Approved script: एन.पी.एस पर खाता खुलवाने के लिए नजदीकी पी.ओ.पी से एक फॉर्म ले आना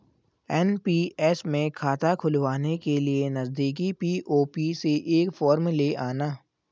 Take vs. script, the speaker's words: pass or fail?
fail